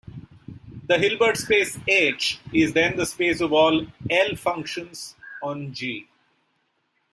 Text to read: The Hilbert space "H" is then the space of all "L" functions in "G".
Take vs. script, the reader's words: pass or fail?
fail